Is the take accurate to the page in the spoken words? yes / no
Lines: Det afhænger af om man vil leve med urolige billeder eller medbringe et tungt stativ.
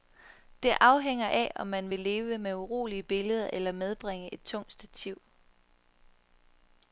yes